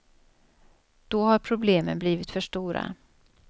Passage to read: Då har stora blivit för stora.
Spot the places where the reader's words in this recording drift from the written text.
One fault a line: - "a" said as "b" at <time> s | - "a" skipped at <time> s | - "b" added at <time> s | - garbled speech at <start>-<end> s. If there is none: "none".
- "stora" said as "problemen" at 1.4 s